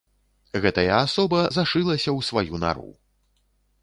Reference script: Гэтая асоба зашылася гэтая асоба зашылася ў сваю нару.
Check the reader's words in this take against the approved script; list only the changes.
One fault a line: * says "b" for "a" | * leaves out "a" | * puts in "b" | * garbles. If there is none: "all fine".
* leaves out "гэтая асоба зашылася"